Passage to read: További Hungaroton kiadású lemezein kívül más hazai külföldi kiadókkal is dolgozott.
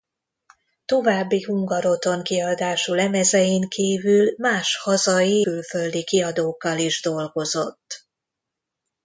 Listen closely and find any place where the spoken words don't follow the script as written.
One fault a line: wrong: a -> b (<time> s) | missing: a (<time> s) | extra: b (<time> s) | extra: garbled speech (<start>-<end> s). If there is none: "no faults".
no faults